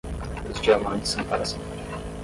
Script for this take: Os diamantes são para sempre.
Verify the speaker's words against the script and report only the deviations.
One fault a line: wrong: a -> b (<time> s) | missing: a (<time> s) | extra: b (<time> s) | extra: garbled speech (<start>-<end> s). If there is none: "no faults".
no faults